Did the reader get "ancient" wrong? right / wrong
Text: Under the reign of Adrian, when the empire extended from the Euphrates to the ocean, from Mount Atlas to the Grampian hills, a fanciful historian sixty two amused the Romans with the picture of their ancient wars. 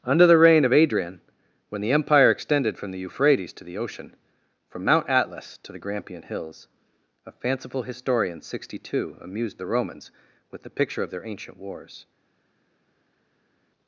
right